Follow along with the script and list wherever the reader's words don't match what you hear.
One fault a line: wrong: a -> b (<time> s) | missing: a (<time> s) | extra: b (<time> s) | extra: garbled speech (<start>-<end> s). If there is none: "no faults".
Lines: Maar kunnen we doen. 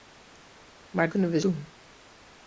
no faults